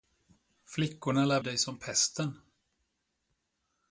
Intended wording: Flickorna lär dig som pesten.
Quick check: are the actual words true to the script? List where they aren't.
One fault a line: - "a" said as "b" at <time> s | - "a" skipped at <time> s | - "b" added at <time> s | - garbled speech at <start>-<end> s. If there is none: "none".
none